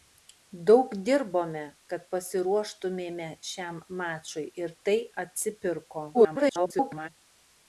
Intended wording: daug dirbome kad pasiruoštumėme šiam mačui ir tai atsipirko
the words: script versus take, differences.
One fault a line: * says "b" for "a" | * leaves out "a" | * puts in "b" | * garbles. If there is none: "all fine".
* garbles